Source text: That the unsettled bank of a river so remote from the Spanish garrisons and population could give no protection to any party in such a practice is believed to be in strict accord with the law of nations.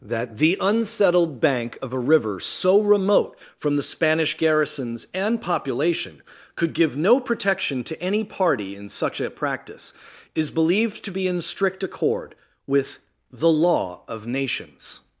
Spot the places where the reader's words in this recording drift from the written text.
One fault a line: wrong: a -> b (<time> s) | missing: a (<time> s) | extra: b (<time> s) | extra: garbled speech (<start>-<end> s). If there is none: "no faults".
no faults